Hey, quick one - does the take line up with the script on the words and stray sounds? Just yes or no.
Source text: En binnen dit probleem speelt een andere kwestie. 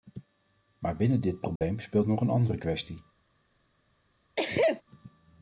no